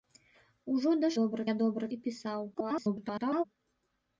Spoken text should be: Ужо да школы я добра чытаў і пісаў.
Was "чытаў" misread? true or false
true